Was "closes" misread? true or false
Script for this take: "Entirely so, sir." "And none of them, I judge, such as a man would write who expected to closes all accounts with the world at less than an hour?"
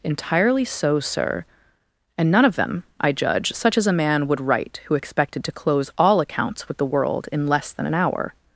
true